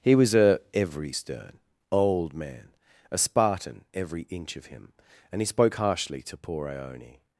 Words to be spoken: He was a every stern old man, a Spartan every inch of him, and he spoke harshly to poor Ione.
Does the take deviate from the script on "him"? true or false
false